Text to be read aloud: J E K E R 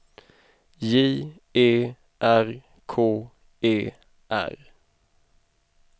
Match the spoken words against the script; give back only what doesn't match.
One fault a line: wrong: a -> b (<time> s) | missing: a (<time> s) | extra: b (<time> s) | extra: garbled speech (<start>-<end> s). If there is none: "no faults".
extra: R (2.2 s)